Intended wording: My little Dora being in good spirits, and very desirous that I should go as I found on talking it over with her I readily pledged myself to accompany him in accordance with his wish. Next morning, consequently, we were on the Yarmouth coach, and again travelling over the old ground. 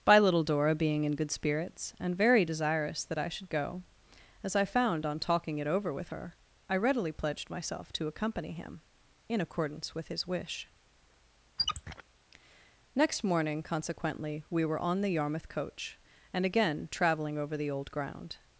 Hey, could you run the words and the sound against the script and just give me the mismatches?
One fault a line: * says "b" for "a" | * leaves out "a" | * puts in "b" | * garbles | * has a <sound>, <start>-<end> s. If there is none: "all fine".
* says "By" for "My"
* has a squeak, 11.6-12.0 s